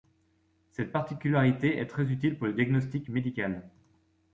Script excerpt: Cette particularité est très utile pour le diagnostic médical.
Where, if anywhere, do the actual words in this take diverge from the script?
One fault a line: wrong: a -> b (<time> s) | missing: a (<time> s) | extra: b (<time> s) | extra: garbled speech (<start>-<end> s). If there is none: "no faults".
no faults